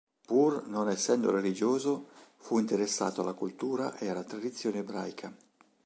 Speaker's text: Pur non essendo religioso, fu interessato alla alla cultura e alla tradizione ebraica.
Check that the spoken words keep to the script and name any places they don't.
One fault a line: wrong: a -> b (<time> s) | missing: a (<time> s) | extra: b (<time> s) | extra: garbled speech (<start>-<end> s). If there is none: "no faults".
missing: alla (3.3 s)